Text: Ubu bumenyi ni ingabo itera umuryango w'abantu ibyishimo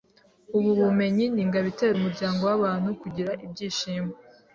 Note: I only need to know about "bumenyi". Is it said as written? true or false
true